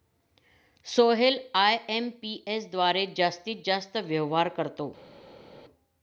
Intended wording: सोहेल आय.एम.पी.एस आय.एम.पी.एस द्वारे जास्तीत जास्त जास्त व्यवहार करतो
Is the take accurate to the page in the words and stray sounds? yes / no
no